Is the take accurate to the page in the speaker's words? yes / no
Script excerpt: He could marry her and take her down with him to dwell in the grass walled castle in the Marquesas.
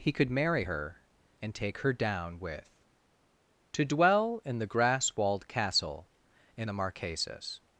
no